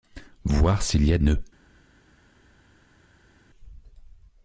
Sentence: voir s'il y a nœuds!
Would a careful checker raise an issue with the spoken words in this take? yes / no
no